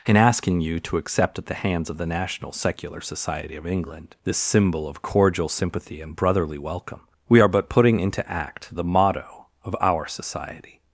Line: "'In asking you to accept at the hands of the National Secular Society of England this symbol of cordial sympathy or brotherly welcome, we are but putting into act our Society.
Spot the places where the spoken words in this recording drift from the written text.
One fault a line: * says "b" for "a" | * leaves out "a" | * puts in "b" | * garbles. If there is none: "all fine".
* says "and" for "or"
* puts in "the motto of"